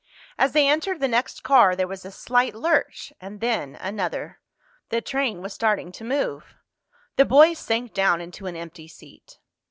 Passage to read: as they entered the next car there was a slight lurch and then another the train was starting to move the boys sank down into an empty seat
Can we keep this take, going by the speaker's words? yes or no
yes